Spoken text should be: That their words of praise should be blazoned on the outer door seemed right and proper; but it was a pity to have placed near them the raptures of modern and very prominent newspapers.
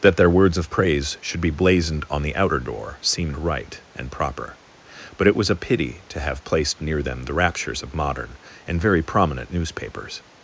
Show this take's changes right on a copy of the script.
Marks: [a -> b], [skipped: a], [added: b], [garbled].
That their words of praise should be blazoned on the outer door seemed right and proper; but it was a pity to have placed near them the raptures of modern and very prominent newspapers.